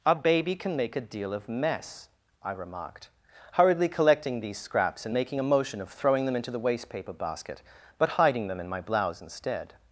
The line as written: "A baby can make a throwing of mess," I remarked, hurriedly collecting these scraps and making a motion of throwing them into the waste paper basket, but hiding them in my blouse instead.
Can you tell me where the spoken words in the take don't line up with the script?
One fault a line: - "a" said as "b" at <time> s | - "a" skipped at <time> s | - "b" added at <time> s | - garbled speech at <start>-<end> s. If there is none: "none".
- "throwing" said as "deal" at 1.0 s